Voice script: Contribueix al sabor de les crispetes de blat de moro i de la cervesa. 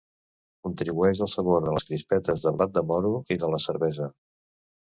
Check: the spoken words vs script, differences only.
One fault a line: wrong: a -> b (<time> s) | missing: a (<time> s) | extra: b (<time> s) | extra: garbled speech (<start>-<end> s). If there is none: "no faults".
no faults